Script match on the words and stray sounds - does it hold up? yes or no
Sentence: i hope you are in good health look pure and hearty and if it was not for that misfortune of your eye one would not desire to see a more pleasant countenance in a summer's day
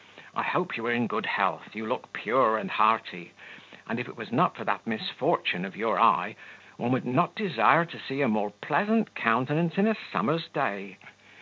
no